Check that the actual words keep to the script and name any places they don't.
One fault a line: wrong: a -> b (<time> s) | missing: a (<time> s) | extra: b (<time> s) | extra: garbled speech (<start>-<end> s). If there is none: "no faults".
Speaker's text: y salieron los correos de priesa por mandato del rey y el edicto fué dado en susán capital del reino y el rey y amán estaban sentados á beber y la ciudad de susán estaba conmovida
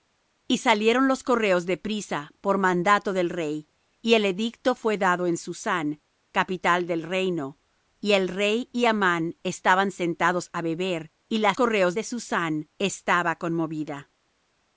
wrong: ciudad -> correos (11.5 s)